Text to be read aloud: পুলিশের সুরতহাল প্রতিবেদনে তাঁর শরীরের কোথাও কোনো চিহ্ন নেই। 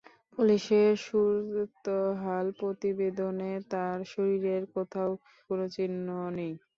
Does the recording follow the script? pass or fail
pass